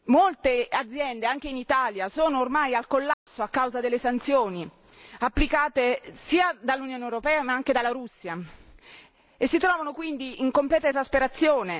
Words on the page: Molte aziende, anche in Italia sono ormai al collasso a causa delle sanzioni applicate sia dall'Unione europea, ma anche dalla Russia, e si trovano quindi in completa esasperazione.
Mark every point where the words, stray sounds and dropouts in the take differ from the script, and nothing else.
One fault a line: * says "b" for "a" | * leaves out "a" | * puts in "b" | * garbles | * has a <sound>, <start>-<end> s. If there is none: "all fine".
* has a dropout, 3.1-3.3 s